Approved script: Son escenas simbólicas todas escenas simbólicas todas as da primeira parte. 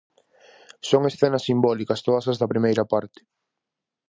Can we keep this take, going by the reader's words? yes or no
no